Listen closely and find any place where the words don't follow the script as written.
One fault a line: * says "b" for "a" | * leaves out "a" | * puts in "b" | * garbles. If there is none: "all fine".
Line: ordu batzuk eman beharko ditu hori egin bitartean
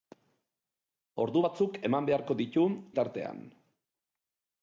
* leaves out "hori egin"